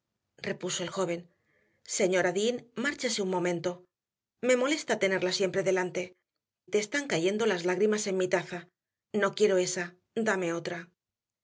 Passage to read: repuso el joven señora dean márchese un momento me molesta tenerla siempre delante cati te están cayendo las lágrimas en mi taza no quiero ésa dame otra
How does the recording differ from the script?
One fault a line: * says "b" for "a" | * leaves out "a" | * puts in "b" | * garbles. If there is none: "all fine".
* leaves out "cati"